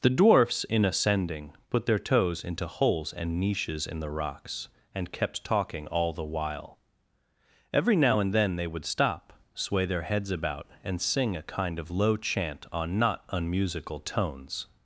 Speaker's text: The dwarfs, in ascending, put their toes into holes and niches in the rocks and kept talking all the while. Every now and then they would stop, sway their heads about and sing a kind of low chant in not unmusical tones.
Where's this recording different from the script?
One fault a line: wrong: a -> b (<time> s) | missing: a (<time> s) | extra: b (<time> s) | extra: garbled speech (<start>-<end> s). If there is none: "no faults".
wrong: in -> on (12.7 s)